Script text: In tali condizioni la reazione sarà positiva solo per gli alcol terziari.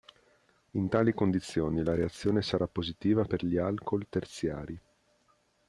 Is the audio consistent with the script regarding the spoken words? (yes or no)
no